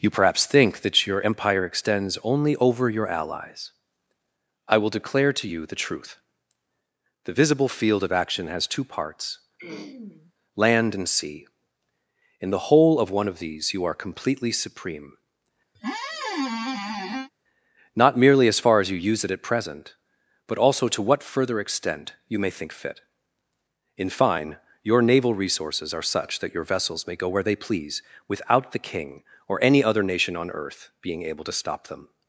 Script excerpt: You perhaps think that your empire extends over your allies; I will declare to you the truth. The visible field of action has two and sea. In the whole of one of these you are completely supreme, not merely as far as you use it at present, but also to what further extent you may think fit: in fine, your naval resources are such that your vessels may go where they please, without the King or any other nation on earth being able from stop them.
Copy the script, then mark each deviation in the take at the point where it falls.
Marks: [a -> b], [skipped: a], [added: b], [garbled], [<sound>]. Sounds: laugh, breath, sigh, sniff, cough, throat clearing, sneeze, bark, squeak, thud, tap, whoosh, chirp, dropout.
You perhaps think that your empire extends [added: only] over your allies; I will declare to you the truth. The visible field of action has two [added: parts land] [throat clearing] and sea. In the whole of one of these you are completely supreme, [squeak] not merely as far as you use it at present, but also to what further extent you may think fit: in fine, your naval resources are such that your vessels may go where they please, without the King or any other nation on earth being able [from -> to] stop them.